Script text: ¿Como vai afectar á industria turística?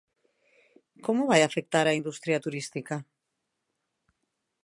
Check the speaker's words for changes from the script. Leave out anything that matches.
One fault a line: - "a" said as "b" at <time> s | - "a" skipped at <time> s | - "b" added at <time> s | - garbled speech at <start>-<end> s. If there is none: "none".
none